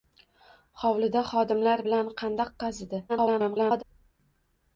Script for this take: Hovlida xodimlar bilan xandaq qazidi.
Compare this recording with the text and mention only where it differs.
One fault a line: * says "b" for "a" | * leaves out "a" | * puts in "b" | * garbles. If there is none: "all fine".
* garbles